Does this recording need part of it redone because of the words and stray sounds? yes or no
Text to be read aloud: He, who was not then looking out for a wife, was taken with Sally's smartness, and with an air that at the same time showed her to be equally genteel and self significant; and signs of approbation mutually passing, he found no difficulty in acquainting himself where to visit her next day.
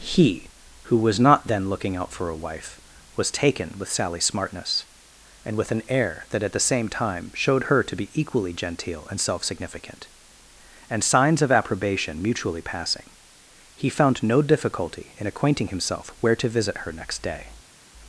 no